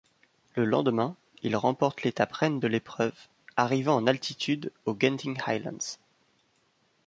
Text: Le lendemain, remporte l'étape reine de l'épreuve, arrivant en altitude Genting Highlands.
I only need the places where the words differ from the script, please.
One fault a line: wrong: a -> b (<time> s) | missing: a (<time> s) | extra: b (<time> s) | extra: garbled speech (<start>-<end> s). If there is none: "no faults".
extra: il (1.4 s)
extra: aux (4.8 s)